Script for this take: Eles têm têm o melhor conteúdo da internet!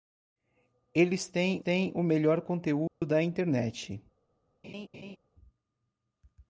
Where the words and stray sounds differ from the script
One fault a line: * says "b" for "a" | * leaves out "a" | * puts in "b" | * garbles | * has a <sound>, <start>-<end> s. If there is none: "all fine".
* has a dropout, 2.9-3.0 s
* has a laugh, 4.6-5.2 s